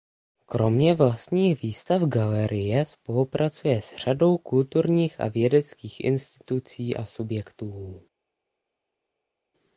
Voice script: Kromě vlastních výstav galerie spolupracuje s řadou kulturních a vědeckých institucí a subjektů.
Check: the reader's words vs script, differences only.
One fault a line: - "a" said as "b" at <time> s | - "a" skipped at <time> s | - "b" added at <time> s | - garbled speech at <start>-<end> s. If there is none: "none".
none